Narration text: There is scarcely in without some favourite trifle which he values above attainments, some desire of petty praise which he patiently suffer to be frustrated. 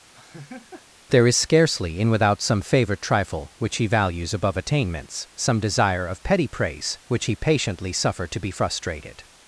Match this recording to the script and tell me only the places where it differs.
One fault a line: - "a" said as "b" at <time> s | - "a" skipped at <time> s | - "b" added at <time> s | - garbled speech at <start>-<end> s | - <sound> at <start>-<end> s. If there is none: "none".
- laugh at 0.1-0.9 s